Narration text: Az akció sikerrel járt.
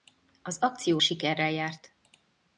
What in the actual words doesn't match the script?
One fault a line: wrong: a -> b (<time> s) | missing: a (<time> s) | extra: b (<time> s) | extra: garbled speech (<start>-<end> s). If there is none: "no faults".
no faults